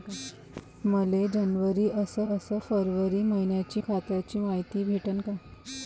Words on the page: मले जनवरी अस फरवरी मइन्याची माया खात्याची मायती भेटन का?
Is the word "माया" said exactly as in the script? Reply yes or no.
no